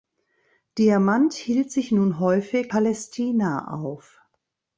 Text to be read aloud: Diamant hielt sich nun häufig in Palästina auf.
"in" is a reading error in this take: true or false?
true